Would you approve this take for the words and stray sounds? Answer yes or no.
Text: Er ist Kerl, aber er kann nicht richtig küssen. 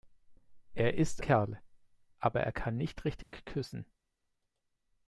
no